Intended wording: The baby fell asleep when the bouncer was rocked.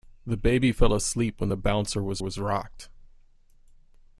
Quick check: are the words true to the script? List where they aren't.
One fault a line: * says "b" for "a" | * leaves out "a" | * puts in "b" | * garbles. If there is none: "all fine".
* puts in "was"